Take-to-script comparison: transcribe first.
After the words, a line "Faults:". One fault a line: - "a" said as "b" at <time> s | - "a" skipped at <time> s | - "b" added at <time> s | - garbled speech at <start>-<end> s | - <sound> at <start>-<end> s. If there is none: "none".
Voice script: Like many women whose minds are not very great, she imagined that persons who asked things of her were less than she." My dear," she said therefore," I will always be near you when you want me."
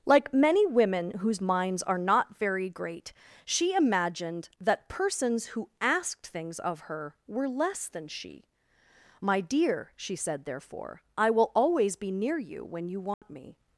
Like many women whose minds are not very great, she imagined that persons who asked things of her were less than she." My dear," she said therefore," I will always be near you when you want me."
Faults:
- dropout at 13.1-13.2 s